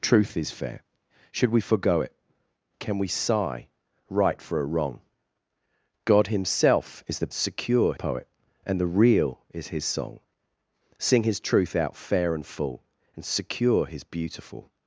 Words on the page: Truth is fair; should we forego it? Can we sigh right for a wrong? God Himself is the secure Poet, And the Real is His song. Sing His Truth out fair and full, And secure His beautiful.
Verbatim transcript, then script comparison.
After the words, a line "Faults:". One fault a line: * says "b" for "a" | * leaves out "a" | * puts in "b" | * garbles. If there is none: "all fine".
Truth is fair; should we forego it? Can we sigh right for a wrong? God Himself is the secure Poet, And the Real is His song. Sing His Truth out fair and full, And secure His beautiful.
Faults:
all fine